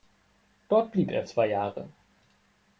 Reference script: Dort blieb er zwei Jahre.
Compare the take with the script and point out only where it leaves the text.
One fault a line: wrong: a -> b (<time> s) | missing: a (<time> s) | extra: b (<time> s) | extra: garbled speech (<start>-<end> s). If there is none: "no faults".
no faults